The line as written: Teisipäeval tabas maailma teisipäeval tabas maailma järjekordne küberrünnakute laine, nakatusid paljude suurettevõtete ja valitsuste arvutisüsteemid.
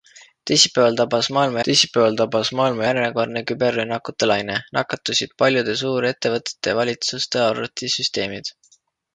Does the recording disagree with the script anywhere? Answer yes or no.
no